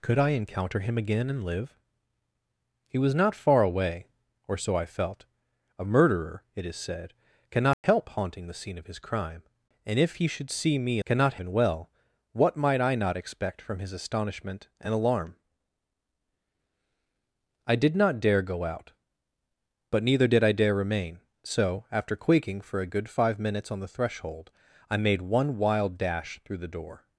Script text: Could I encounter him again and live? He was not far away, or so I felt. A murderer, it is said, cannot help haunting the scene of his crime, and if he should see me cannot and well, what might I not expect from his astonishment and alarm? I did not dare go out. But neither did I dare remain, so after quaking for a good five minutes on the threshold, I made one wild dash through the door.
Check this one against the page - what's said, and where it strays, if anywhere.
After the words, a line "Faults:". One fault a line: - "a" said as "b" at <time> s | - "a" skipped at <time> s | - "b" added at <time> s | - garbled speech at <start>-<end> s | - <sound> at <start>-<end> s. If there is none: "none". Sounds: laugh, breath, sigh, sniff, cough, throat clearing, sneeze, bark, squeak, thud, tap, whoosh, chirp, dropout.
Could I encounter him again and live? He was not far away, or so I felt. A murderer, it is said, cannot help haunting the scene of his crime, and if he should see me cannot and well, what might I not expect from his astonishment and alarm? I did not dare go out. But neither did I dare remain, so after quaking for a good five minutes on the threshold, I made one wild dash through the door.
Faults:
- dropout at 7.7-7.8 s